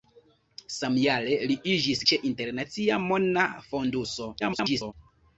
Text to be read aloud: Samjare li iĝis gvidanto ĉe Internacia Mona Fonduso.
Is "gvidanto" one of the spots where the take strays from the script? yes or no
yes